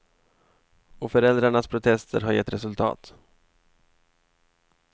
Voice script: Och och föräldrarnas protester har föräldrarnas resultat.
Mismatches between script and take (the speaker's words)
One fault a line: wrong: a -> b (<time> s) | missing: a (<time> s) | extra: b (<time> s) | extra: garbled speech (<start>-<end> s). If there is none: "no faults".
missing: och (1.1 s)
wrong: föräldrarnas -> gett (2.3 s)